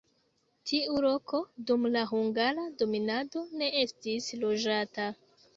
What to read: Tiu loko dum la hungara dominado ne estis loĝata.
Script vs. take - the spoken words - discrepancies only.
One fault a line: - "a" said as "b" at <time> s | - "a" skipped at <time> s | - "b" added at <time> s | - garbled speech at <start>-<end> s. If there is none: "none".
none